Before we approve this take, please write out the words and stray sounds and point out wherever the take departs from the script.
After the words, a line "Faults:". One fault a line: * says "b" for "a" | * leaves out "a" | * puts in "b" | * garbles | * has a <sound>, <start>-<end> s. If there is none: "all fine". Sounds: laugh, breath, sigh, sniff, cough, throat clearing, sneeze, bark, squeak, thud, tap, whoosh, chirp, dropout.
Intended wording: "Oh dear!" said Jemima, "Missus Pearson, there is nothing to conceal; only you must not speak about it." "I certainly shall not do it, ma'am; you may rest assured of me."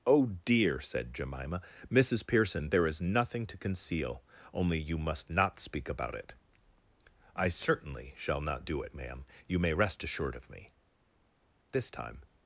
"Oh dear!" said Jemima, "Missus Pearson, there is nothing to conceal; only you must not speak about it." "I certainly shall not do it, ma'am; you may rest assured of me." This time
Faults:
* puts in "This time"